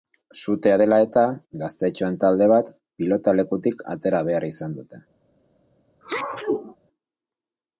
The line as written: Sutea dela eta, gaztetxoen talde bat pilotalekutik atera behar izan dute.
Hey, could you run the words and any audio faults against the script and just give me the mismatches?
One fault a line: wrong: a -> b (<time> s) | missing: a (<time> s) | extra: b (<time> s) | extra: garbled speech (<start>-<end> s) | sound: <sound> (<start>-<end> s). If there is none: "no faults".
sound: sneeze (6.0-6.8 s)